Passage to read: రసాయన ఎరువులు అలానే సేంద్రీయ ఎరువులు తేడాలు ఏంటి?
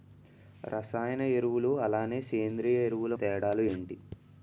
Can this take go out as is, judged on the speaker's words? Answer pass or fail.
pass